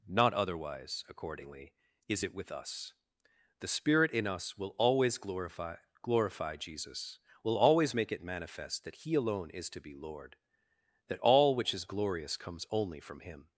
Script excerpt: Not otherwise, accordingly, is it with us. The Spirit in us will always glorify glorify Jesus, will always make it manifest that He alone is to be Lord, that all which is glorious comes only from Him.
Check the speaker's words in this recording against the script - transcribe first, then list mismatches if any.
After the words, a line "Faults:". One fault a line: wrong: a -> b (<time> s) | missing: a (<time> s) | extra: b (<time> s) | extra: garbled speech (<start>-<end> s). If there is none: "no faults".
Not otherwise, accordingly, is it with us. The Spirit in us will always glorify glorify Jesus, will always make it manifest that He alone is to be Lord, that all which is glorious comes only from Him.
Faults:
no faults